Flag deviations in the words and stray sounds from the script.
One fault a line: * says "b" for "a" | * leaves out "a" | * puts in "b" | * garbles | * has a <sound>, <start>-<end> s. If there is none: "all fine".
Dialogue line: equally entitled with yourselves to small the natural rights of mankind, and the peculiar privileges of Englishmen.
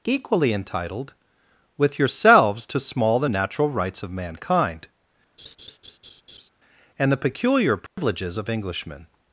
* has a laugh, 5.4-6.5 s
* has a dropout, 7.9-8.0 s